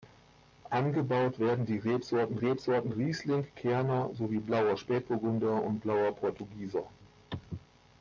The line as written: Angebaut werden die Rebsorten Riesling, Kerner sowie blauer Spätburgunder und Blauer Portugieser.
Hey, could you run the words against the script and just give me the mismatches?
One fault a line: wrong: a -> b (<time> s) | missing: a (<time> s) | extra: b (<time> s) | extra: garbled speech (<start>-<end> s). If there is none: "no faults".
extra: Rebsorten (2.3 s)